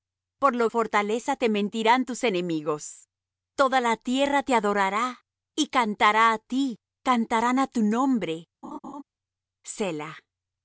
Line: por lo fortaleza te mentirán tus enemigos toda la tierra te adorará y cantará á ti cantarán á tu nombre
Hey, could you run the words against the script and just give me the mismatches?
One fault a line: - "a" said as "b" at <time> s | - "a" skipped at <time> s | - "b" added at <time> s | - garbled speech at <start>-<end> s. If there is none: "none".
none